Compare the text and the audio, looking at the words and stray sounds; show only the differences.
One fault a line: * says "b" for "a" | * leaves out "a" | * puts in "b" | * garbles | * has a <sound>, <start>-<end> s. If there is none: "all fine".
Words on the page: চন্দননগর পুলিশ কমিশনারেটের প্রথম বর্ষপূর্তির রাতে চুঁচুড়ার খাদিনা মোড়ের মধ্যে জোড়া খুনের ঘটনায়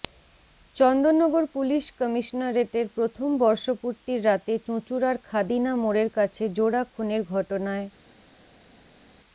* says "কাছে" for "মধ্যে"